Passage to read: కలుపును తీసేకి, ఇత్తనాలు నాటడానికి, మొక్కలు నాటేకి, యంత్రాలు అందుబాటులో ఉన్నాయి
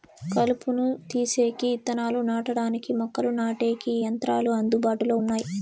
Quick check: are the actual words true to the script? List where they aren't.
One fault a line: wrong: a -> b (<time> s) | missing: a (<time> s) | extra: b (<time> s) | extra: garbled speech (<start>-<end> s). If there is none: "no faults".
no faults